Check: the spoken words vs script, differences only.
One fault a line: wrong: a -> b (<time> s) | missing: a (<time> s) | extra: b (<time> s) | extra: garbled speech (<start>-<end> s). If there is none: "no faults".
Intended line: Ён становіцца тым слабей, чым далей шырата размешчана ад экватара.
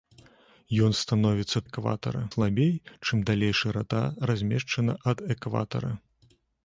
wrong: тым -> экватара (1.7 s)